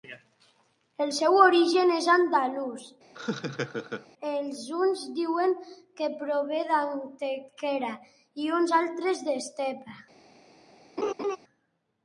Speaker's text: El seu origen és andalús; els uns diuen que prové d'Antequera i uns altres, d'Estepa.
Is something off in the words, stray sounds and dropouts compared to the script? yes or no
yes